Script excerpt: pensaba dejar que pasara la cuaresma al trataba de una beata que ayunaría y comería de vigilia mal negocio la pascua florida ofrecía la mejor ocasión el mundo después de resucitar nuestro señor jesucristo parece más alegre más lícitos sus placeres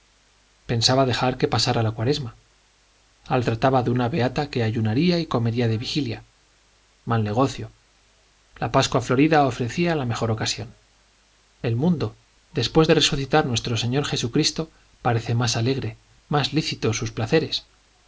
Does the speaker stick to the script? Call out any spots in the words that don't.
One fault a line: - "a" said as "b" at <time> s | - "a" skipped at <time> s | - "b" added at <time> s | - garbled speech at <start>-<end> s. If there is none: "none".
none